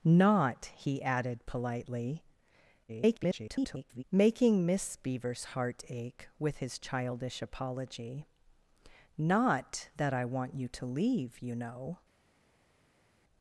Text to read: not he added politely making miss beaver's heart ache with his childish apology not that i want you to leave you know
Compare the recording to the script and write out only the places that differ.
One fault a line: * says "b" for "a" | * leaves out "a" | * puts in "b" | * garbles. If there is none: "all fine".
* garbles